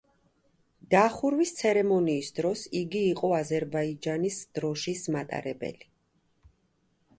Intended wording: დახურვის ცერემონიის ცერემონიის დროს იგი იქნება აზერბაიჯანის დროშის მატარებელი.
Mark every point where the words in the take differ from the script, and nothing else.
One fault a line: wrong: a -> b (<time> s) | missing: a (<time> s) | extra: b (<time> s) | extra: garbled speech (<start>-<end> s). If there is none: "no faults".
missing: ცერემონიის (2.3 s)
wrong: იქნება -> იყო (3.1 s)